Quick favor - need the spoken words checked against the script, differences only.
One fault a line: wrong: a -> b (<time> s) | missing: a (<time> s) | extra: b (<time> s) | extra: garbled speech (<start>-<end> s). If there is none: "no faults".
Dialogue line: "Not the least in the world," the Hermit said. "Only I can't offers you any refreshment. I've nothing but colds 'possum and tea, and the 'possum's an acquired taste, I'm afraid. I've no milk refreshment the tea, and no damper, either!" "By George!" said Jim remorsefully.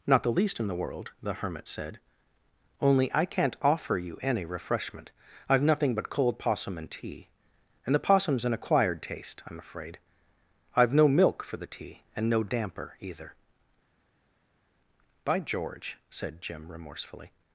wrong: offers -> offer (3.6 s)
wrong: colds -> cold (6.1 s)
wrong: refreshment -> for (11.4 s)